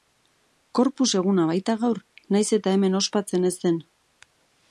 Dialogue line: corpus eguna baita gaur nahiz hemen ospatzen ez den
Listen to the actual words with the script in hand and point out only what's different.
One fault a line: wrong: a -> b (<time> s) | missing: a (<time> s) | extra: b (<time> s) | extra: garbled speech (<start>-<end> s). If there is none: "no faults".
extra: eta (2.6 s)